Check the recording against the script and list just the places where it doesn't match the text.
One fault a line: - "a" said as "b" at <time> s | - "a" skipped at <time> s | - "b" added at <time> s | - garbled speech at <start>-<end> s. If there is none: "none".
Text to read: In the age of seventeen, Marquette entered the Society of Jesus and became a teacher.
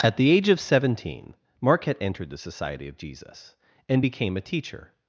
- "In" said as "At" at 0.0 s